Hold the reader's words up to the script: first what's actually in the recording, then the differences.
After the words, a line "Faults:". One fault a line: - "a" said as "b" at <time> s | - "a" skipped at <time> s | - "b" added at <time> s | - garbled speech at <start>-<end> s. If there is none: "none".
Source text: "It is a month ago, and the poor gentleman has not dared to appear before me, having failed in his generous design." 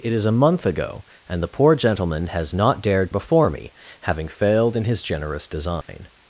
"It is a month ago, and the poor gentleman has not dared before me, having failed in his generous design."
Faults:
- "to appear" skipped at 3.1 s